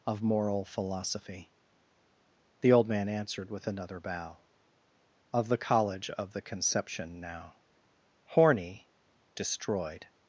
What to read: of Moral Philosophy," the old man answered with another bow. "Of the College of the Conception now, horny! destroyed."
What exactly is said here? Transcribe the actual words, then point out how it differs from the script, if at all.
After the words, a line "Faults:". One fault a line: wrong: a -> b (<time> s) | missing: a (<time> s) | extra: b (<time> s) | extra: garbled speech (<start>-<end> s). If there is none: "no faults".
of Moral Philosophy," the old man answered with another bow. "Of the College of the Conception now, horny! destroyed."
Faults:
no faults